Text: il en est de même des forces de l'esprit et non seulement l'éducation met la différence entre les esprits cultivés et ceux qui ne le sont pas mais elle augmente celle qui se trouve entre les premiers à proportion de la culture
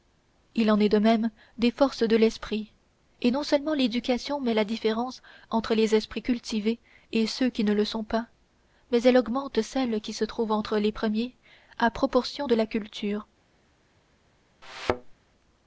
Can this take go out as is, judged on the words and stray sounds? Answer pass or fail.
fail